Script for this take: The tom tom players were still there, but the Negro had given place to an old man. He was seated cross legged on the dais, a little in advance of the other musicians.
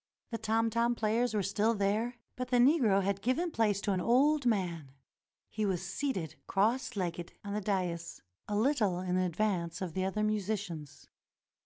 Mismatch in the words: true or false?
false